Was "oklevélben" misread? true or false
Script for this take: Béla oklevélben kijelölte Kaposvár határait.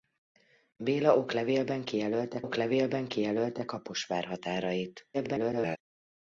false